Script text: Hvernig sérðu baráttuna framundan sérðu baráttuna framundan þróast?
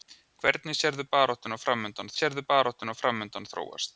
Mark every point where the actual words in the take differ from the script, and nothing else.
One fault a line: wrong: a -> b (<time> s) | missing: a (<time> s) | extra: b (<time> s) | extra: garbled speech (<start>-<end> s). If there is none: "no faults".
no faults